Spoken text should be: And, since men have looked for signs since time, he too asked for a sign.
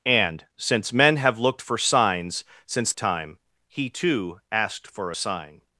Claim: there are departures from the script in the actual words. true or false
false